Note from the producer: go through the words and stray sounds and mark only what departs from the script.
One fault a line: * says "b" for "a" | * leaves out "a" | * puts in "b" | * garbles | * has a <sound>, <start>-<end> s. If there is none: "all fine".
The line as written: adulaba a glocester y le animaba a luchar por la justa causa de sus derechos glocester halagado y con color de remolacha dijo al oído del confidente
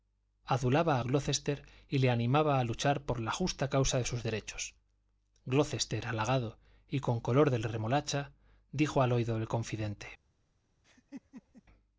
* has a laugh, 10.8-11.6 s